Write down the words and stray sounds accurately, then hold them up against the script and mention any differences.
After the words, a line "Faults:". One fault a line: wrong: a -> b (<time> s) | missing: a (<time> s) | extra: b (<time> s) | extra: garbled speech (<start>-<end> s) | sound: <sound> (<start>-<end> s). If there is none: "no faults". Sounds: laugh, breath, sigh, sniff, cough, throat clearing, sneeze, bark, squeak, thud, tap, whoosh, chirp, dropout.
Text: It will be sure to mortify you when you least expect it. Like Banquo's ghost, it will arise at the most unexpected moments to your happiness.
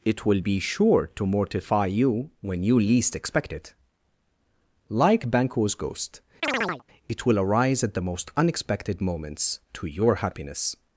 It will be sure to mortify you when you least expect it. Like Banquo's ghost, it will arise at the most unexpected moments to your happiness.
Faults:
sound: chirp (6.4-6.8 s)